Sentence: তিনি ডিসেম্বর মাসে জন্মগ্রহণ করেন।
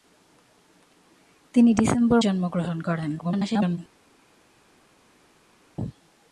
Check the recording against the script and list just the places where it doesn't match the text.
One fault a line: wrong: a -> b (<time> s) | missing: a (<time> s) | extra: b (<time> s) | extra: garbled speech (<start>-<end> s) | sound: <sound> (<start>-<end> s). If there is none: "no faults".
missing: মাসে (2.2 s)
extra: garbled speech (3.2-3.8 s)